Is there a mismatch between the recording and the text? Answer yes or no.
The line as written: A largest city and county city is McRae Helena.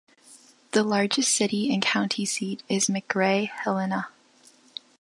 yes